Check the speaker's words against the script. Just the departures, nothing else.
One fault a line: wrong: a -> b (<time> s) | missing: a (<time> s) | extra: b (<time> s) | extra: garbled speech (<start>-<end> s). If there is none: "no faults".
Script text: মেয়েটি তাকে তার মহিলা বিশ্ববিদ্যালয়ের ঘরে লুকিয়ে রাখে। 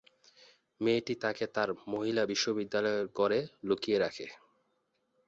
no faults